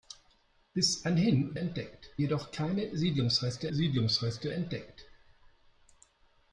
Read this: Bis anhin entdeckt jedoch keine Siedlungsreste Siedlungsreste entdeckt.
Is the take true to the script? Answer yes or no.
yes